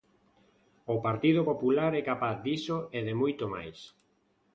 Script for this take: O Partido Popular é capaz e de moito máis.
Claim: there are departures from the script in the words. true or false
true